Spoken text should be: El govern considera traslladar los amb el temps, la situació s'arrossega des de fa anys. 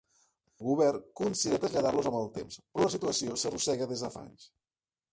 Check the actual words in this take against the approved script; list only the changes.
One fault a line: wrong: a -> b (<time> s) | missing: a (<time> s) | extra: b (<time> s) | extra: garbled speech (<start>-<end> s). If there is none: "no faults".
extra: però (2.7 s)